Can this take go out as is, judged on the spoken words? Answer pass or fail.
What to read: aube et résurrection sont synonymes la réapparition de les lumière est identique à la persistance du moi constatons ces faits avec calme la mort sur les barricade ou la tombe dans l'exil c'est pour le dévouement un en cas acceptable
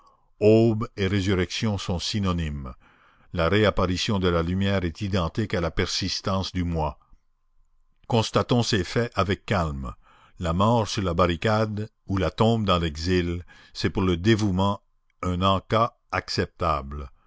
fail